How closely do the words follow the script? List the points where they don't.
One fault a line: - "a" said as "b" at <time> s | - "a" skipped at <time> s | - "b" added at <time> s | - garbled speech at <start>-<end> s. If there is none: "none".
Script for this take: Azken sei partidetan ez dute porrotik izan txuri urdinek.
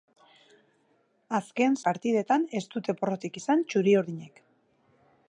- "sei" skipped at 1.8 s